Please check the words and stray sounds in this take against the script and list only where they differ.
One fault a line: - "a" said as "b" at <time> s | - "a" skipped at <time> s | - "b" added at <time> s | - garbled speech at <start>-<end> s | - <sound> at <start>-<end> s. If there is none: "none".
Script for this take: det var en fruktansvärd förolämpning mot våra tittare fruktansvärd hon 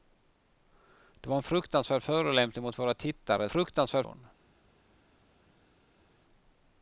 none